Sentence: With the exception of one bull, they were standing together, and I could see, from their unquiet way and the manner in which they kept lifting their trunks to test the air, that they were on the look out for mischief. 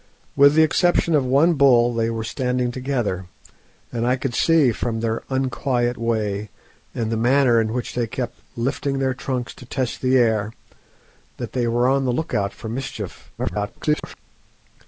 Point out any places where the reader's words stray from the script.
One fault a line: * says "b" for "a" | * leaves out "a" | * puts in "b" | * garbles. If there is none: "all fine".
* garbles